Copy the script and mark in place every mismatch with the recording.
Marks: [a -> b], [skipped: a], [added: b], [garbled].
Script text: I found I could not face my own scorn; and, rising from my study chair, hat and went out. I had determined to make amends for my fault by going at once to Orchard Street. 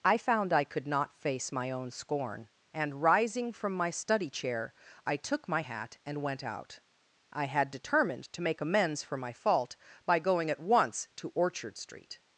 I found I could not face my own scorn; and, rising from my study chair, [added: I took my] hat and went out. I had determined to make amends for my fault by going at once to Orchard Street.